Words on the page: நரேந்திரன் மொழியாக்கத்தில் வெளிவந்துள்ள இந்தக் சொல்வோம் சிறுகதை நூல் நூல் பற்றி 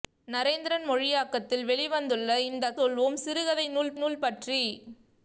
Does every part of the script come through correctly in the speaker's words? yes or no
yes